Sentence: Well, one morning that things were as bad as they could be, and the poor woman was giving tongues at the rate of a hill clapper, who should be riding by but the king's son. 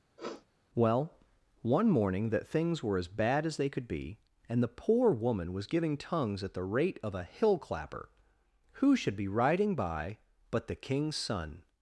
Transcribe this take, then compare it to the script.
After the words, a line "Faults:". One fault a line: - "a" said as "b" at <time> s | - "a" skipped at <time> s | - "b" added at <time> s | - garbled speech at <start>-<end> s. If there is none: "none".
Well, one morning that things were as bad as they could be, and the poor woman was giving tongues at the rate of a hill clapper, who should be riding by but the king's son.
Faults:
none